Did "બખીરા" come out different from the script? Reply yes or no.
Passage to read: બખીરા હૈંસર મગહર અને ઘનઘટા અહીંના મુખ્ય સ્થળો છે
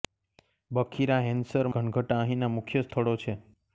no